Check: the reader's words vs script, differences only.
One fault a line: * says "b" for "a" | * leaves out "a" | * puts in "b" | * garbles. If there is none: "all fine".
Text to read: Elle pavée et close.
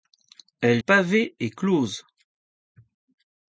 all fine